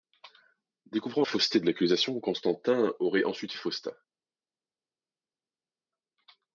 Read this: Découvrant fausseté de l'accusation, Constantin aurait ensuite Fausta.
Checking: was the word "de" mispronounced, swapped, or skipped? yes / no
no